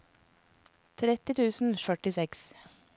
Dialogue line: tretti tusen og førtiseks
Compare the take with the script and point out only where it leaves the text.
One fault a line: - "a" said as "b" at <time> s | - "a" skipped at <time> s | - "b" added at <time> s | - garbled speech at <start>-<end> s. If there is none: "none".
none